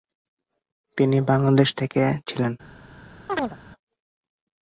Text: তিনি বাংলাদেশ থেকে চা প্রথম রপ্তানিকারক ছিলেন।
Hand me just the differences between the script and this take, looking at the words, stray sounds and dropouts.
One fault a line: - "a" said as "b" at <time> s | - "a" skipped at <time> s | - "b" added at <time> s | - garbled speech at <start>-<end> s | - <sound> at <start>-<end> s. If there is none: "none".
- "চা প্রথম রপ্তানিকারক" skipped at 2.0 s
- chirp at 3.3-3.6 s